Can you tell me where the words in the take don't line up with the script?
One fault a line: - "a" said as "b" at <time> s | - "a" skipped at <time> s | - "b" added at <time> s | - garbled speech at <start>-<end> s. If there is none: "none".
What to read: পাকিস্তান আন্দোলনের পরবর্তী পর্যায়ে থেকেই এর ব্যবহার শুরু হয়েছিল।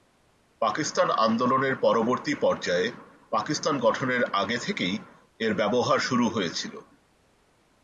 - "পাকিস্তান গঠনের আগে" added at 3.3 s